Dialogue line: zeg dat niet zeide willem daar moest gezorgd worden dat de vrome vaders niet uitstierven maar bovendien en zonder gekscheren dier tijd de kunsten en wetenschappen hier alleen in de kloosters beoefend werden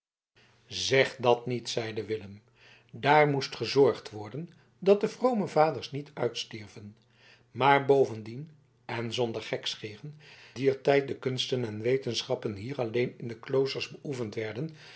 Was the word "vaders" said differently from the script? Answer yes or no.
no